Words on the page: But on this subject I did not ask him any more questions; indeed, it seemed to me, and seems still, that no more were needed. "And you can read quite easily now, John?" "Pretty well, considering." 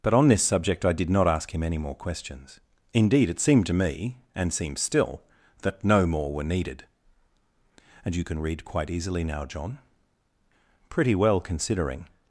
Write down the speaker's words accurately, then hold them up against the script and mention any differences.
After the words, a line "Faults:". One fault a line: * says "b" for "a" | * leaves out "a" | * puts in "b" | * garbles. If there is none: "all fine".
But on this subject I did not ask him any more questions; indeed, it seemed to me, and seems still, that no more were needed. "And you can read quite easily now, John?" "Pretty well, considering."
Faults:
all fine